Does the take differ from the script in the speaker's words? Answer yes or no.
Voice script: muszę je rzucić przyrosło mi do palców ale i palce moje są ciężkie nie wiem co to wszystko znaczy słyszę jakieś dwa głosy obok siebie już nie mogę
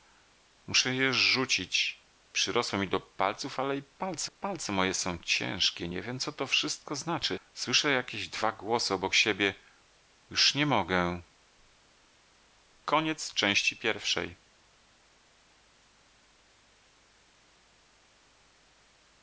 yes